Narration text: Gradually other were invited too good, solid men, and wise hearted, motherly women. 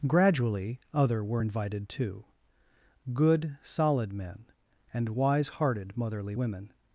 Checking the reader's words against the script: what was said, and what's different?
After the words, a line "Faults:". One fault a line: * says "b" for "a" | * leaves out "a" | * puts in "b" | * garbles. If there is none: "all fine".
Gradually other were invited too good, solid men, and wise hearted, motherly women.
Faults:
all fine